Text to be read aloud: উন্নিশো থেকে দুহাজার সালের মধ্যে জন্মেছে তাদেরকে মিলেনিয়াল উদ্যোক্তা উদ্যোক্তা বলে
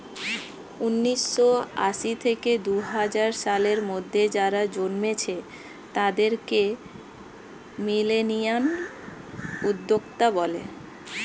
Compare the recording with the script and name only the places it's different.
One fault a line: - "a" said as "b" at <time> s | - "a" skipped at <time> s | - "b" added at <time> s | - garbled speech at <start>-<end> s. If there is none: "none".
- "আশি" added at 1.8 s
- "যারা" added at 4.4 s
- "উদ্যোক্তা" skipped at 10.3 s